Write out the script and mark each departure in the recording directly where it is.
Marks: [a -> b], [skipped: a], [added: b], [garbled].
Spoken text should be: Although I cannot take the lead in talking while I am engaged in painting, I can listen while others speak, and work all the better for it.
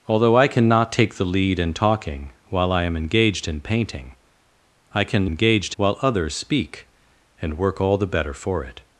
Although I cannot take the lead in talking while I am engaged in painting, I can [listen -> engaged] while others speak, and work all the better for it.